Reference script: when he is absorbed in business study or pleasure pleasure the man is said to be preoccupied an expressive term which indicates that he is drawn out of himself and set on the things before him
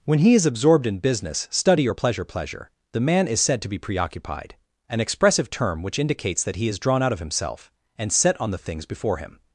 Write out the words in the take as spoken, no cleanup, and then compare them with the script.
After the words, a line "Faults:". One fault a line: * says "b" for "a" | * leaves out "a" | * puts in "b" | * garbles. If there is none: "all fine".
when he is absorbed in business study or pleasure pleasure the man is said to be preoccupied an expressive term which indicates that he is drawn out of himself and set on the things before him
Faults:
all fine